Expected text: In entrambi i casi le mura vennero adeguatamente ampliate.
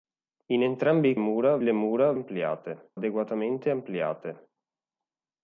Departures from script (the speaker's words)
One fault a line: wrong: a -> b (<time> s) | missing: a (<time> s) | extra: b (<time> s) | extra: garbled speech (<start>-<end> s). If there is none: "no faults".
wrong: casi -> mura (1.2 s)
wrong: vennero -> ampliate (2.1 s)